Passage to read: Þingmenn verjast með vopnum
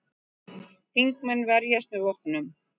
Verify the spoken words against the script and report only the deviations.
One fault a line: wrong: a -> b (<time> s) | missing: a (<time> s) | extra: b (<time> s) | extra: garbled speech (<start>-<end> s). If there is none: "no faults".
no faults